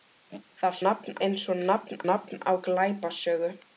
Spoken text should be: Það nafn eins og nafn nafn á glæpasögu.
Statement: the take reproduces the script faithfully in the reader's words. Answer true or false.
true